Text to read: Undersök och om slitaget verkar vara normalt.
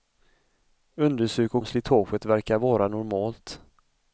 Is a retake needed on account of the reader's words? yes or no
no